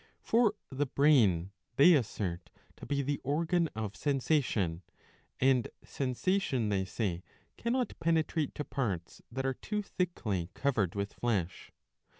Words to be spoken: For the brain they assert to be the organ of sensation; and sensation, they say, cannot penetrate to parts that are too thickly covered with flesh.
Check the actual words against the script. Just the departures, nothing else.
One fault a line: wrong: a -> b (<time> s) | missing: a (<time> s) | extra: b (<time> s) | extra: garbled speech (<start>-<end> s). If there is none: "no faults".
no faults